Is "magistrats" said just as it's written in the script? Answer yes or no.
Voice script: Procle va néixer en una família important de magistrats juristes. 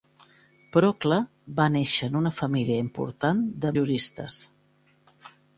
no